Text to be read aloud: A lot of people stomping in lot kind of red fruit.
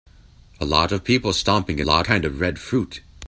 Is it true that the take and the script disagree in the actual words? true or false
false